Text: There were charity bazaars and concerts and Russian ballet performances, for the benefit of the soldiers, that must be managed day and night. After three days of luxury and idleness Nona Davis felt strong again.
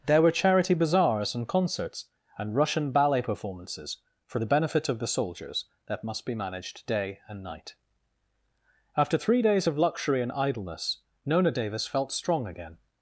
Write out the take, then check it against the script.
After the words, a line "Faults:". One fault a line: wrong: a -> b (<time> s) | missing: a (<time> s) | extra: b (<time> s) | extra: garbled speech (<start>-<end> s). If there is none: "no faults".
There were charity bazaars and concerts and Russian ballet performances, for the benefit of the soldiers, that must be managed day and night. After three days of luxury and idleness Nona Davis felt strong again.
Faults:
no faults